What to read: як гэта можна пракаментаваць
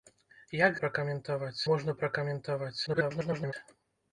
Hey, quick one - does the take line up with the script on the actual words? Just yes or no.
no